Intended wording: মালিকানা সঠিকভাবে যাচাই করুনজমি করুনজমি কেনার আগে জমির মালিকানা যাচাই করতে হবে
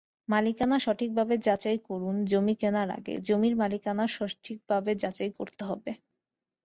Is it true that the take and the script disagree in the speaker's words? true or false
true